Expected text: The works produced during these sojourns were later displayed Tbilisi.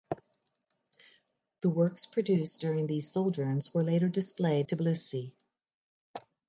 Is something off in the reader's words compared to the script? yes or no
no